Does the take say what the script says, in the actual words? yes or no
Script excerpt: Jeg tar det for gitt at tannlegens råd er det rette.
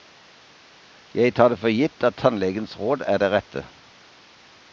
yes